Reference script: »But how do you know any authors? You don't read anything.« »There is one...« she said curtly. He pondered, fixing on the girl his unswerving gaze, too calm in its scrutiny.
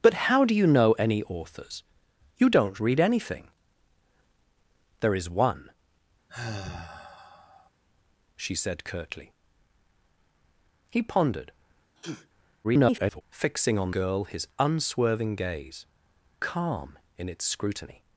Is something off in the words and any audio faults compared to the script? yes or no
yes